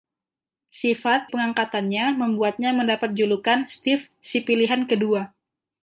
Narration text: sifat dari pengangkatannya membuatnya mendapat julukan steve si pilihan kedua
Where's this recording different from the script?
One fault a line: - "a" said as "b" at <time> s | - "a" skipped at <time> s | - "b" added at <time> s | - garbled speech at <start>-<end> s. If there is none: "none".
- "dari" skipped at 1.3 s